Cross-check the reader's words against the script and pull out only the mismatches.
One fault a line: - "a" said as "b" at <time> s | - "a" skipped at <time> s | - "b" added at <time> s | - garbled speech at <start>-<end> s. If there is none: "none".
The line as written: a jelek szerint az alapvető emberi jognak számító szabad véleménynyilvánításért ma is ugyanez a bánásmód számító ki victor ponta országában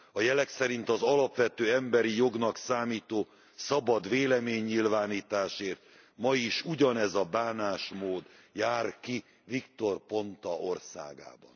- "számító" said as "jár" at 8.5 s